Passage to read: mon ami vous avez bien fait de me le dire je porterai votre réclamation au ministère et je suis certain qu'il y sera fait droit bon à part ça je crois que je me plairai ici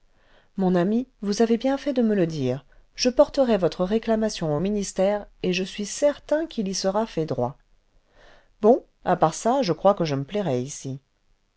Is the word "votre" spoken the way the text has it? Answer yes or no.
yes